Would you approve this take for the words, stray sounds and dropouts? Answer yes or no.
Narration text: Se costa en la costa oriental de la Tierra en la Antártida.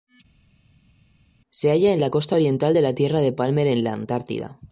no